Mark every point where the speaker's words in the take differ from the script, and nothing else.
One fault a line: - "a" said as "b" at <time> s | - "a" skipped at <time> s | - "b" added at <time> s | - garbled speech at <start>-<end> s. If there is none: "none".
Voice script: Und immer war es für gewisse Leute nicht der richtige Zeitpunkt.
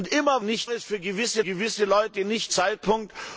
- "war" said as "nicht" at 0.4 s
- "gewisse" added at 1.4 s
- "der richtige" skipped at 2.5 s